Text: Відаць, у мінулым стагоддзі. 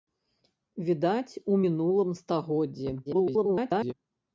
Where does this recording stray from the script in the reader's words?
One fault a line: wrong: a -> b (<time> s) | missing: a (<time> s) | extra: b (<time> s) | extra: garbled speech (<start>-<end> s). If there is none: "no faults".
extra: garbled speech (3.1-3.9 s)